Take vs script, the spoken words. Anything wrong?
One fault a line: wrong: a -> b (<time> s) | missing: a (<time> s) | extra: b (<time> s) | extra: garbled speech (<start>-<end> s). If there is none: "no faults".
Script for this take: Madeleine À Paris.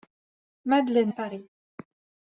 no faults